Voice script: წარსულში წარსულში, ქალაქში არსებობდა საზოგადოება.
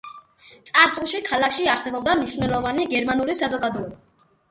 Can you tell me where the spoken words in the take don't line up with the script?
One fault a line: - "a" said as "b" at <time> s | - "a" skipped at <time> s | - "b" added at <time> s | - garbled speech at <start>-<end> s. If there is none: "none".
- "წარსულში" skipped at 1.2 s
- "მნიშვნელოვანი გერმანული" added at 2.2 s